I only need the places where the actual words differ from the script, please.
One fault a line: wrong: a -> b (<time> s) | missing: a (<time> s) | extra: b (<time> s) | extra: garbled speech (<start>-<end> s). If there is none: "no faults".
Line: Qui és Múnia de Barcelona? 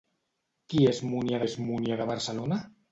extra: és Múnia (1.5 s)